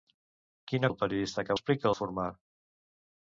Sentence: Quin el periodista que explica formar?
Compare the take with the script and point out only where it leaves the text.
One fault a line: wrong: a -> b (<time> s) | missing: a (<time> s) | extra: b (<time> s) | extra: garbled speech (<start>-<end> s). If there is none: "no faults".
no faults